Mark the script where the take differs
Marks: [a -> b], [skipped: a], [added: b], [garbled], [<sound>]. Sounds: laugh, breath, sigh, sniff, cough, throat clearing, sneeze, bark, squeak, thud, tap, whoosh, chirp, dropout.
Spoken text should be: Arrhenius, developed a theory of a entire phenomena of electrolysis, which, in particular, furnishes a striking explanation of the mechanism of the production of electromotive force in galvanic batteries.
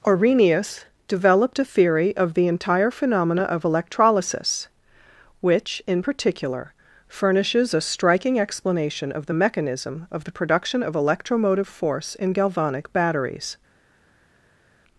Arrhenius, developed a theory of [a -> the] entire phenomena of electrolysis, which, in particular, furnishes a striking explanation of the mechanism of the production of electromotive force in galvanic batteries.